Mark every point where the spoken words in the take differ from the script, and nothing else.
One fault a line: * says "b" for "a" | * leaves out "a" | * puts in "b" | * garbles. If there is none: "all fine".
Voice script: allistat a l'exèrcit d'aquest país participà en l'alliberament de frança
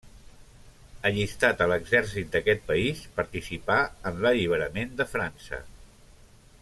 all fine